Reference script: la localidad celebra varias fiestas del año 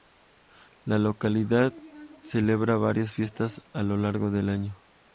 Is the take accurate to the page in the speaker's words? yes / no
no